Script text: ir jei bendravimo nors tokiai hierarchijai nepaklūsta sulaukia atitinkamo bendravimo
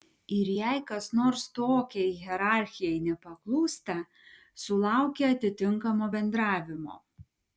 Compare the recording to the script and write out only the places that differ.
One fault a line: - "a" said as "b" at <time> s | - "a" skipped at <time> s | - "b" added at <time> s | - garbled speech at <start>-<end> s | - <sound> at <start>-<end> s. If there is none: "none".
- "bendravimo" said as "kas" at 0.9 s